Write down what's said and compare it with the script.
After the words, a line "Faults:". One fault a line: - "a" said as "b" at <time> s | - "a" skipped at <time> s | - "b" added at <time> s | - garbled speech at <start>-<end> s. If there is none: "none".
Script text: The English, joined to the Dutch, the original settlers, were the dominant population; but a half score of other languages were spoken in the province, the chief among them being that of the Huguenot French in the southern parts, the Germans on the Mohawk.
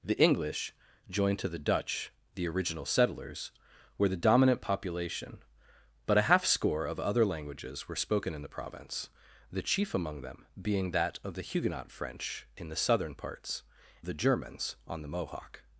The English, joined to the Dutch, the original settlers, were the dominant population; but a half score of other languages were spoken in the province, the chief among them being that of the Huguenot French in the southern parts, the Germans on the Mohawk.
Faults:
none